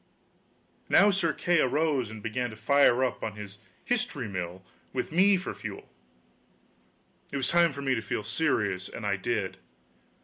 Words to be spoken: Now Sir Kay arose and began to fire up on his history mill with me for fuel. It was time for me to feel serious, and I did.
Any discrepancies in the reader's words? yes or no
no